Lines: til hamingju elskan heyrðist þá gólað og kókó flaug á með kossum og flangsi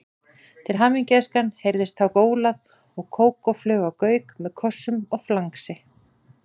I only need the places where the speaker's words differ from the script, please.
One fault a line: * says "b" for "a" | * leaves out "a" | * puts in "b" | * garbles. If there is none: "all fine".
* puts in "gauk"